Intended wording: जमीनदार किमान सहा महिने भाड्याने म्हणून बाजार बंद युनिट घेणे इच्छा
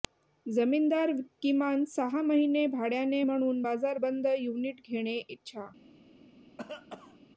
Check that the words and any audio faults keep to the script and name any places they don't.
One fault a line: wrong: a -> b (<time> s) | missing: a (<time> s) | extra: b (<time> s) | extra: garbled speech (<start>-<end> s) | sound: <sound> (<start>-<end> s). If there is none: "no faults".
sound: cough (6.6-7.2 s)